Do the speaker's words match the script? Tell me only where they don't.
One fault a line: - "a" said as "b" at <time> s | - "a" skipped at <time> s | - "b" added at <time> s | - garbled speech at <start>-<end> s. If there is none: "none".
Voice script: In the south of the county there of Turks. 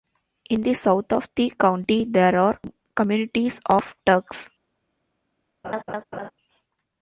- "are communities" added at 2.4 s